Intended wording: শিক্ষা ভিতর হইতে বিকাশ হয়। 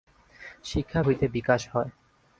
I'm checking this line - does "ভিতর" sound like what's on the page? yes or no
no